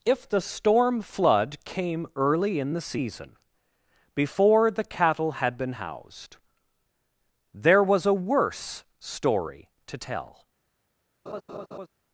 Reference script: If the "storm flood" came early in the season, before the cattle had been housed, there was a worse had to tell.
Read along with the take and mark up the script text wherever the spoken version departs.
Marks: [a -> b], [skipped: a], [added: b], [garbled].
If the "storm flood" came early in the season, before the cattle had been housed, there was a worse [had -> story] to tell.